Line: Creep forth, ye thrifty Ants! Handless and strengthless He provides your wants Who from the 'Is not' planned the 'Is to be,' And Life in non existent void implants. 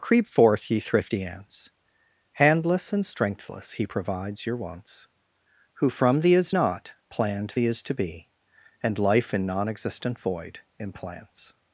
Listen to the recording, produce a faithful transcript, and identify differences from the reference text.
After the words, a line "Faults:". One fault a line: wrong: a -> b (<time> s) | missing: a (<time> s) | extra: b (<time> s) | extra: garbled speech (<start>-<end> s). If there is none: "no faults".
Creep forth, ye thrifty Ants! Handless and strengthless He provides your wants Who from the 'Is not' planned the 'Is to be,' And Life in non existent void implants.
Faults:
no faults